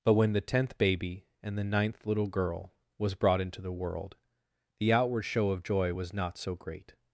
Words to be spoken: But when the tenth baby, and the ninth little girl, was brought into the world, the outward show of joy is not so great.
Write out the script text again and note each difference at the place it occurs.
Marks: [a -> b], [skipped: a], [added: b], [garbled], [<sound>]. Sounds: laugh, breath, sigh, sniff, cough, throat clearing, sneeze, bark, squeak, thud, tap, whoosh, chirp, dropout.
But when the tenth baby, and the ninth little girl, was brought into the world, the outward show of joy [is -> was] not so great.